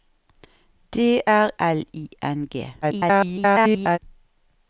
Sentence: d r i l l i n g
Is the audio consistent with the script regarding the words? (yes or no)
no